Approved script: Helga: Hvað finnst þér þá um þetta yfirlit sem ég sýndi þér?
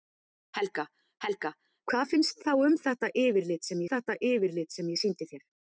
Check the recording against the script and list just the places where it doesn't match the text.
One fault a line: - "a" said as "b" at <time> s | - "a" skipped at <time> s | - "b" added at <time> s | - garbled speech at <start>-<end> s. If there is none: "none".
- "helga" added at 1.3 s
- "þér" skipped at 2.4 s
- "þetta yfirlit sem" added at 3.9 s